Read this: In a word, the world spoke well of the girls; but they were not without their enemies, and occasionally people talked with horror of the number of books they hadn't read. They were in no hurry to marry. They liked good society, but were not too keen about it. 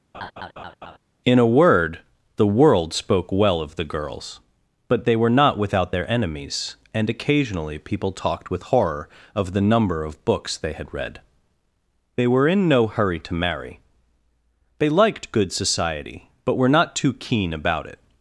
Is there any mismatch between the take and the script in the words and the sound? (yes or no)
yes